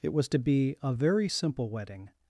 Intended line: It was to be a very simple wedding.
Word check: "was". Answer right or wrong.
right